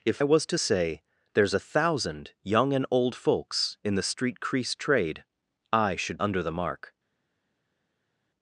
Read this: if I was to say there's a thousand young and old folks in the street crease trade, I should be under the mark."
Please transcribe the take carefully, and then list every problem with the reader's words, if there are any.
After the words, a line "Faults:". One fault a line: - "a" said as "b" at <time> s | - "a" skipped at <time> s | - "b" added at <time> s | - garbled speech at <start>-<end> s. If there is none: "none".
if was to say there's a thousand young and old folks in the street crease trade, I should under the mark."
Faults:
- "I" skipped at 0.2 s
- "be" skipped at 6.2 s